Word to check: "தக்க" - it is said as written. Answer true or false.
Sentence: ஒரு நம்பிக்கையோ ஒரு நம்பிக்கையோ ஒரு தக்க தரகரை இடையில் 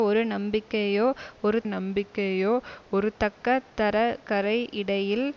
true